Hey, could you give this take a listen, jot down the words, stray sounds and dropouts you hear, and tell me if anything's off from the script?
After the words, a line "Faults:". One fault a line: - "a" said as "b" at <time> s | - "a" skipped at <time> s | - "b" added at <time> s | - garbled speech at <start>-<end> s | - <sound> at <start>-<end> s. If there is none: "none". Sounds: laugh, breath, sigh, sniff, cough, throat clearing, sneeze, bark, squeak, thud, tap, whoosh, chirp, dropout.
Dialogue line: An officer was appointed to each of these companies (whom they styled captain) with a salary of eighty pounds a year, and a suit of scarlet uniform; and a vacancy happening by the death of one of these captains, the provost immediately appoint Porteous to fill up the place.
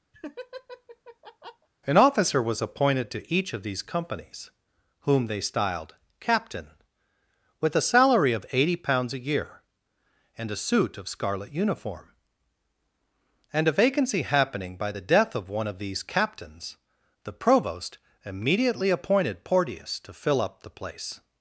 An officer was appointed to each of these companies (whom they styled captain) with a salary of eighty pounds a year, and a suit of scarlet uniform; and a vacancy happening by the death of one of these captains, the provost immediately appointed Porteous to fill up the place.
Faults:
- laugh at 0.1-1.7 s
- "appoint" said as "appointed" at 18.9 s